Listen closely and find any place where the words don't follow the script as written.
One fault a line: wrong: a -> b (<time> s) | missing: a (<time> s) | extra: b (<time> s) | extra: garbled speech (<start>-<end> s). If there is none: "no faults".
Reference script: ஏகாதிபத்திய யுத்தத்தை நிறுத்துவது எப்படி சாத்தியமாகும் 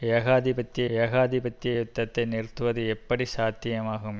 extra: ஏகாதிபத்திய (1.0 s)